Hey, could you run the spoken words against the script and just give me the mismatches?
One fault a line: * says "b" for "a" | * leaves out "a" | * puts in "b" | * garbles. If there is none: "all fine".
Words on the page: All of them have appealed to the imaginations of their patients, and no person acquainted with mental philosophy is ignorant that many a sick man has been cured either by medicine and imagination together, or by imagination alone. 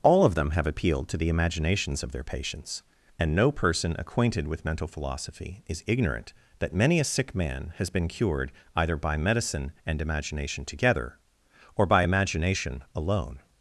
all fine